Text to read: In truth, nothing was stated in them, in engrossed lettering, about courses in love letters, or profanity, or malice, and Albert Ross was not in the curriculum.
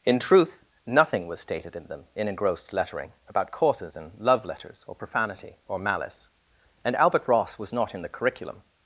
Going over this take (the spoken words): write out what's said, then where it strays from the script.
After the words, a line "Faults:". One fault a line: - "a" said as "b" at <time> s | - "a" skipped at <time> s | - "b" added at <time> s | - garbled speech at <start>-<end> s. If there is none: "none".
In truth, nothing was stated in them, in engrossed lettering, about courses in love letters, or profanity, or malice, and Albert Ross was not in the curriculum.
Faults:
none